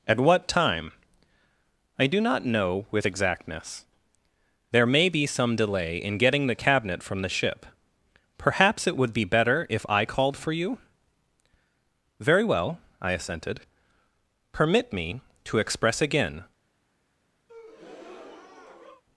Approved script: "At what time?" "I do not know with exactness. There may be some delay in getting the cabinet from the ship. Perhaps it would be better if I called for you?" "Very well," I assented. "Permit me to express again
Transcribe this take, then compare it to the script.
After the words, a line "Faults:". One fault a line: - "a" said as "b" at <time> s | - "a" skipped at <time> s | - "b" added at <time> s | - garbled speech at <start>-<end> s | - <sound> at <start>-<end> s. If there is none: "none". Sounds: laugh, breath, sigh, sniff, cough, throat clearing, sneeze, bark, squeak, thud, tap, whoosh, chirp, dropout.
"At what time?" "I do not know with exactness. There may be some delay in getting the cabinet from the ship. Perhaps it would be better if I called for you?" "Very well," I assented. "Permit me to express again
Faults:
- breath at 17.5-19.0 s